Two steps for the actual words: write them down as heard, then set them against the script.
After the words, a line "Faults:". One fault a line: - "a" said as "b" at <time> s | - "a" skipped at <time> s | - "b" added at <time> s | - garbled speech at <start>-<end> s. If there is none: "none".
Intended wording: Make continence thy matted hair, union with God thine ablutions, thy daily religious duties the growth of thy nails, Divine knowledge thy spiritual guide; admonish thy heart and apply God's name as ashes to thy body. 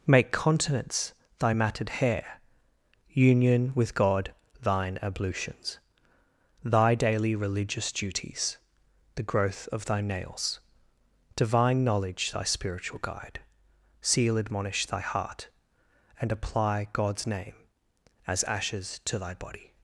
Make continence thy matted hair, union with God thine ablutions, thy daily religious duties the growth of thy nails, Divine knowledge thy spiritual guide; seal admonish thy heart and apply God's name as ashes to thy body.
Faults:
- "seal" added at 14.0 s